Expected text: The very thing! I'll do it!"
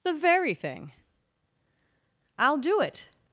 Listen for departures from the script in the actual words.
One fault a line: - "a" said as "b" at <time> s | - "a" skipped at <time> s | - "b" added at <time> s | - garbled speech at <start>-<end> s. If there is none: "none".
none